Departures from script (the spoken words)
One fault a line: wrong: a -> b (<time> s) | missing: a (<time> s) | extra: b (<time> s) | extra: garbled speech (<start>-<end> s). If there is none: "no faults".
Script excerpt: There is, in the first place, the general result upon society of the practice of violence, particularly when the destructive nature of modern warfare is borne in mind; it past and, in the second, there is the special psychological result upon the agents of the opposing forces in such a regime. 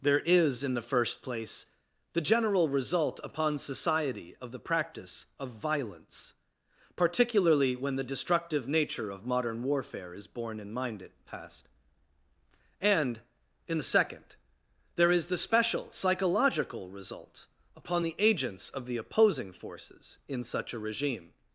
no faults